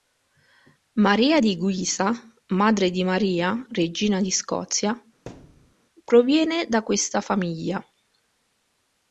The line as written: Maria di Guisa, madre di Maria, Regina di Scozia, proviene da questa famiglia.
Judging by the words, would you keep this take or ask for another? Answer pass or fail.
pass